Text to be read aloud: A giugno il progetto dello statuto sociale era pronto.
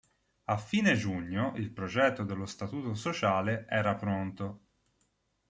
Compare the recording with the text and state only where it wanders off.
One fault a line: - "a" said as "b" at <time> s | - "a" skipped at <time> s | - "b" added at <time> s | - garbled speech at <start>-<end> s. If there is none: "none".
- "fine" added at 0.6 s